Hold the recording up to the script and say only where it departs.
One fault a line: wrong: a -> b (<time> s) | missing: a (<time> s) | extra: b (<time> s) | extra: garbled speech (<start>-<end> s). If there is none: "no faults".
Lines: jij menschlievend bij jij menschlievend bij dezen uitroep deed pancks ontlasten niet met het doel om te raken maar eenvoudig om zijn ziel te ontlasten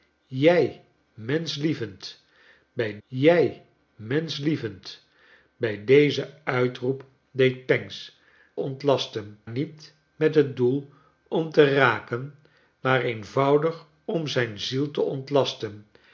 no faults